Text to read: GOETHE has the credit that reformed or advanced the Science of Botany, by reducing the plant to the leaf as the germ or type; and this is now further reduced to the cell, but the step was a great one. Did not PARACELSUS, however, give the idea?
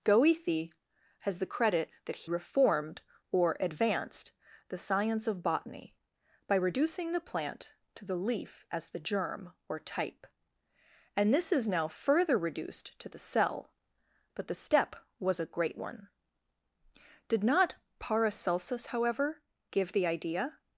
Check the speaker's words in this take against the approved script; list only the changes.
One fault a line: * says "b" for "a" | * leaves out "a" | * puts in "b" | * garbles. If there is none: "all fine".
all fine